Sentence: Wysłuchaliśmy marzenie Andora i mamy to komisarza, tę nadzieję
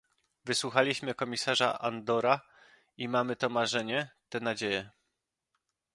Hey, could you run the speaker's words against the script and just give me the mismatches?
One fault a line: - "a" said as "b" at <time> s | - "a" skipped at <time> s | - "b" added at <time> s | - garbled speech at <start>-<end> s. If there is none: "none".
- "marzenie" said as "komisarza" at 1.1 s
- "komisarza" said as "marzenie" at 3.5 s